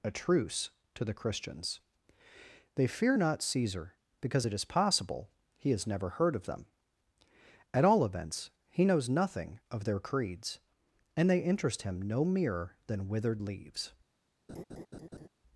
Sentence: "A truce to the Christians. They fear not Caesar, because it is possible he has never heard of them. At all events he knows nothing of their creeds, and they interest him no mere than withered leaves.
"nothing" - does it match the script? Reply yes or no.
yes